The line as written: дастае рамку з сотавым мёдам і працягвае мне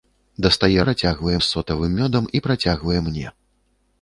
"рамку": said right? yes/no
no